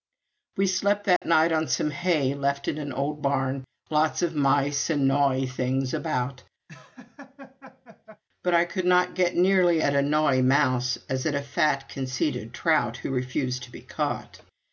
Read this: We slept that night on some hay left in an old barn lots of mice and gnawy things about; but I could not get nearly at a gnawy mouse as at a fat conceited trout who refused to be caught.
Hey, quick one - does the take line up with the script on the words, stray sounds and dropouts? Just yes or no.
no